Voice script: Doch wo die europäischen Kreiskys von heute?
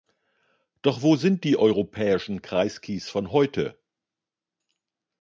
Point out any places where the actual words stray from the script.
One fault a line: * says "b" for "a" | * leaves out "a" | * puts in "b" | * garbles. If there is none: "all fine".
* puts in "sind"